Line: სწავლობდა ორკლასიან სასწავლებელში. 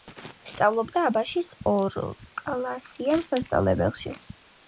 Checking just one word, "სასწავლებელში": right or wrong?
right